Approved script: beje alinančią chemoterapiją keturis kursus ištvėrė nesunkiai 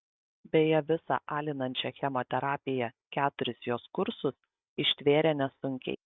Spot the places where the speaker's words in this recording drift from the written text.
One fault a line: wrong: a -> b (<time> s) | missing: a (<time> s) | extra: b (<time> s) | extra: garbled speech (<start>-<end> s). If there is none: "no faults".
extra: visą (0.9 s)
extra: jos (3.7 s)